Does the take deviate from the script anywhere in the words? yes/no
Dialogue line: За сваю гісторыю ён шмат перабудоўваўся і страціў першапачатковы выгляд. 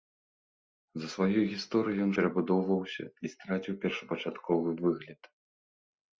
yes